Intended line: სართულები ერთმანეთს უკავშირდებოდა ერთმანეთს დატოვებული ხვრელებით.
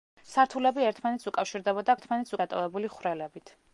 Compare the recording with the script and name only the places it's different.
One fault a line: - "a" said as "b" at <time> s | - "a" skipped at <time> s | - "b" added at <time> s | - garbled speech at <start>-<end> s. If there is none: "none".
none